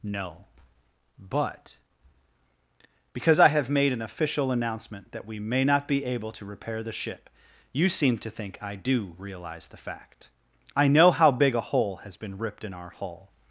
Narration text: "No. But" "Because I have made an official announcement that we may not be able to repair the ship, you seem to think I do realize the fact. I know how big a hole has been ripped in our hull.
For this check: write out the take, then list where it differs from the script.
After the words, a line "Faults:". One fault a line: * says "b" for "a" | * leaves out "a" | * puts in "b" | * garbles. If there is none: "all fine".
"No. But" "Because I have made an official announcement that we may not be able to repair the ship, you seem to think I do realize the fact. I know how big a hole has been ripped in our hull.
Faults:
all fine